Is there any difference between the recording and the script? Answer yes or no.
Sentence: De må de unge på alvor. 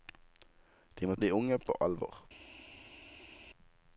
no